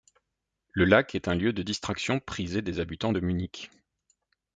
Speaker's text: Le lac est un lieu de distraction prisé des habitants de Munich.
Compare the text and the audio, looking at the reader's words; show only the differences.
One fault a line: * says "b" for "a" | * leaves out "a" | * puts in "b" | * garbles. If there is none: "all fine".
all fine